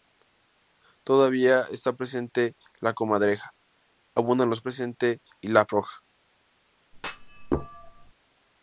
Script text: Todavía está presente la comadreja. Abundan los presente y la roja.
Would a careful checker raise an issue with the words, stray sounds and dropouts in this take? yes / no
yes